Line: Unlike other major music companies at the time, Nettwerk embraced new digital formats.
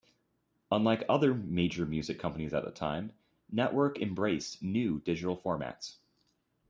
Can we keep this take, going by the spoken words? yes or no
yes